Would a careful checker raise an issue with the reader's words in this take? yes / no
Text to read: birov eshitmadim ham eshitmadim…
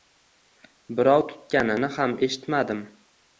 yes